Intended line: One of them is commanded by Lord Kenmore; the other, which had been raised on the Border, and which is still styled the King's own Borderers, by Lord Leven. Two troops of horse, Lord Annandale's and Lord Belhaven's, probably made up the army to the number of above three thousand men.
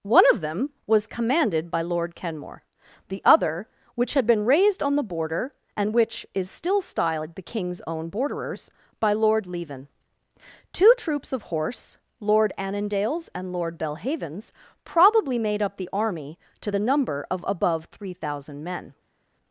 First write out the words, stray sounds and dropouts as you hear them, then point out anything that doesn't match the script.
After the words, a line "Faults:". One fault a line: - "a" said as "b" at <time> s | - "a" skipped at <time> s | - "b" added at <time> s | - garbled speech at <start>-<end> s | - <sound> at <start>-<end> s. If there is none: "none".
One of them was commanded by Lord Kenmore; the other, which had been raised on the Border, and which is still styled the King's own Borderers, by Lord Leven. Two troops of horse, Lord Annandale's and Lord Belhaven's, probably made up the army to the number of above three thousand men.
Faults:
- "is" said as "was" at 0.9 s